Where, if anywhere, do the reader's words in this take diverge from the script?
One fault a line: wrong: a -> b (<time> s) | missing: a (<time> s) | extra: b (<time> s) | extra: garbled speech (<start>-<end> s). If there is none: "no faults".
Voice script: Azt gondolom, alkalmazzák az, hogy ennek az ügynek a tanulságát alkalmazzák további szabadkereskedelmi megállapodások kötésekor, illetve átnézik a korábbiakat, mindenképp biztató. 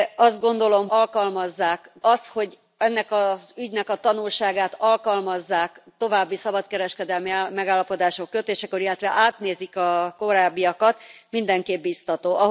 no faults